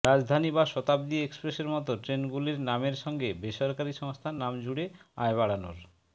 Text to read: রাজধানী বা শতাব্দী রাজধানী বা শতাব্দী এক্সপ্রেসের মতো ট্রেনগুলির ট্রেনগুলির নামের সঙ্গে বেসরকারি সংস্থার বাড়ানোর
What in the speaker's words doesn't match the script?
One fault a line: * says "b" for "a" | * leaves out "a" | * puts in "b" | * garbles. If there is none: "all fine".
* leaves out "রাজধানী বা শতাব্দী"
* leaves out "ট্রেনগুলির"
* puts in "নাম জুড়ে আয়"